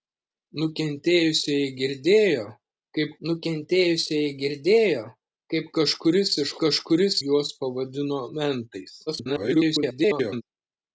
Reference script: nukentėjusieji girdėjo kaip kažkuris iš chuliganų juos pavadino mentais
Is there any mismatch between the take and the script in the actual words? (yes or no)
yes